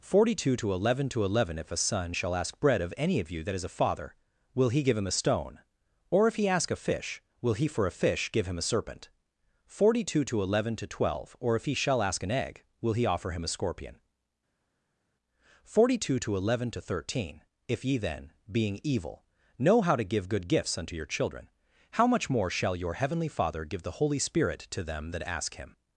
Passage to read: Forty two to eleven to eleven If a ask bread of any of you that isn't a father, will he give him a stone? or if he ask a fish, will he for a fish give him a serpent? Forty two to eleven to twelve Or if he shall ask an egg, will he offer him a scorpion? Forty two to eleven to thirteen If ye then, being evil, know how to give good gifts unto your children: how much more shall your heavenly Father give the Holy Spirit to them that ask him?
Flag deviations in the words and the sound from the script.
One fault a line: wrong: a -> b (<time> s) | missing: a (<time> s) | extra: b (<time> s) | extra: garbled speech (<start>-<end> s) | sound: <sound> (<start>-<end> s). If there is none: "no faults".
extra: son shall (1.8 s)
wrong: isn't -> is (3.5 s)